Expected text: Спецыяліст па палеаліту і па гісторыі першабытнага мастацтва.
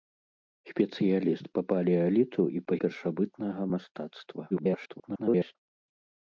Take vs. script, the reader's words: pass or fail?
fail